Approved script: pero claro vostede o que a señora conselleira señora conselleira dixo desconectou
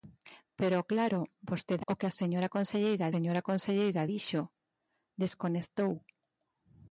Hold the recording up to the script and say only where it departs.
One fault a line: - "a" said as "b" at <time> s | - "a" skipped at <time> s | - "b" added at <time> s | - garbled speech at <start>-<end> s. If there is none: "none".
none